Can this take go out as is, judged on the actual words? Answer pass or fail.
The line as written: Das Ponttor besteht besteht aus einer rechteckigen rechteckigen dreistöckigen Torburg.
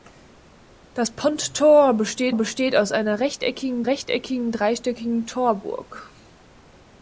pass